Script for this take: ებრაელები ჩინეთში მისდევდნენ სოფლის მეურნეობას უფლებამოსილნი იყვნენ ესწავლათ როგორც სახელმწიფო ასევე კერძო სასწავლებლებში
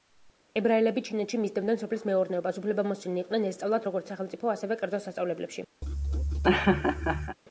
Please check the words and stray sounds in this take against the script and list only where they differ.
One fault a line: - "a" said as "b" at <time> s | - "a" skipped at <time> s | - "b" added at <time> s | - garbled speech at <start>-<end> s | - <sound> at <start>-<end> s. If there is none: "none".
- laugh at 5.8-7.4 s